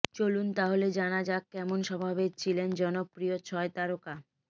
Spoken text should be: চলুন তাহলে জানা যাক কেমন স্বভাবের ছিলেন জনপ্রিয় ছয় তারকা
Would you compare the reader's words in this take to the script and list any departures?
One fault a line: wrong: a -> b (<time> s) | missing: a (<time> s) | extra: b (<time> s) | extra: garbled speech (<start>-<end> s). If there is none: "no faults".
no faults